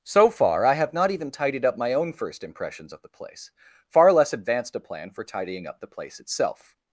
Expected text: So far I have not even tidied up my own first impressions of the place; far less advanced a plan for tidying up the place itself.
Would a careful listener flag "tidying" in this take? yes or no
no